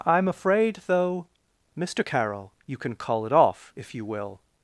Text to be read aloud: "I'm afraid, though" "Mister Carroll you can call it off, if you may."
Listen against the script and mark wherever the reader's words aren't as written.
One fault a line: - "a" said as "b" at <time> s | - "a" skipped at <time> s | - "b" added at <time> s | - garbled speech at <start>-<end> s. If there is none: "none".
- "may" said as "will" at 4.1 s